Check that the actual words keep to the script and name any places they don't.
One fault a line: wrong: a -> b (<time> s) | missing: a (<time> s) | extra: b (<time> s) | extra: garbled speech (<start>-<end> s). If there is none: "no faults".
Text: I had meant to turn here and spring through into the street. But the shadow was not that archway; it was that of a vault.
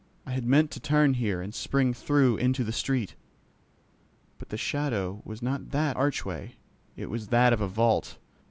no faults